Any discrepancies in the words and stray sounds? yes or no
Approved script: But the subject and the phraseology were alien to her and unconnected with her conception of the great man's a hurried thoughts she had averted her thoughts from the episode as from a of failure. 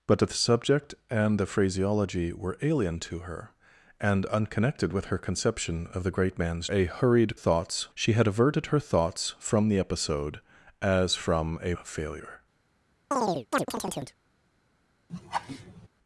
yes